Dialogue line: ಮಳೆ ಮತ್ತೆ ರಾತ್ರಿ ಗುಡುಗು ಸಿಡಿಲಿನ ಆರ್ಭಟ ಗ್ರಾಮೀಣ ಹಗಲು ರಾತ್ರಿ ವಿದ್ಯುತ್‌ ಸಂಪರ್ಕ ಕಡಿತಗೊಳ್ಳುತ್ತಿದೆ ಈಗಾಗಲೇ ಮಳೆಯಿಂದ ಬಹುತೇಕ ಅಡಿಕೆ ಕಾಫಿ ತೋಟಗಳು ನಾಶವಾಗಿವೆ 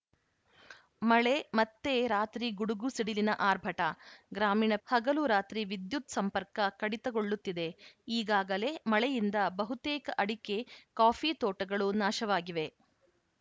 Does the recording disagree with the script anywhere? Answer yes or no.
no